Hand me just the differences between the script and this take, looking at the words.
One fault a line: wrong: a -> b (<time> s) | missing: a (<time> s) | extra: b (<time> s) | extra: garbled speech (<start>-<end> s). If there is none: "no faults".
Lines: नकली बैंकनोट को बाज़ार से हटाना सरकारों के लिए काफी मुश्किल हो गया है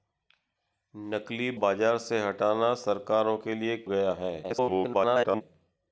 missing: बैंकनोट को (1.5 s)
missing: काफी मुश्किल हो (3.8 s)
extra: garbled speech (4.4-5.4 s)